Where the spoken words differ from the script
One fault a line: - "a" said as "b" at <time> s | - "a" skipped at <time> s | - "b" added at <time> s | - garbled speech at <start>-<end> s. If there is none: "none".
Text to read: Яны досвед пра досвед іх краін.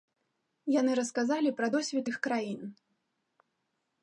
- "досвед" said as "расказалі" at 1.0 s